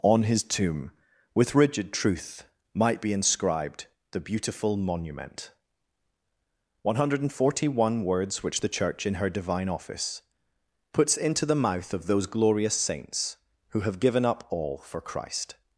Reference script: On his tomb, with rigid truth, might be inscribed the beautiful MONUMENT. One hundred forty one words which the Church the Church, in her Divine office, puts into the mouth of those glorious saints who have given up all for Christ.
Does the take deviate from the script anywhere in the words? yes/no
yes